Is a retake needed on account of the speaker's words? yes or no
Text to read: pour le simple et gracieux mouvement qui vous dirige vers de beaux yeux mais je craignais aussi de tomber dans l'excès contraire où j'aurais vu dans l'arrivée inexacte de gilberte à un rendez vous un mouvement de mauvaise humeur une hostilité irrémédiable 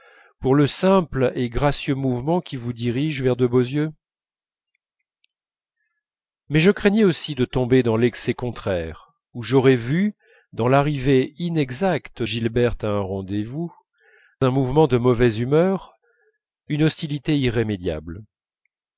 yes